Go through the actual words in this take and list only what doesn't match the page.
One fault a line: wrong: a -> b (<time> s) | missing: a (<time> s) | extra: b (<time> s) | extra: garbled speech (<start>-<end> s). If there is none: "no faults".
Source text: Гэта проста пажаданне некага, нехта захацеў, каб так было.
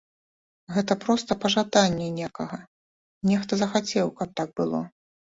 no faults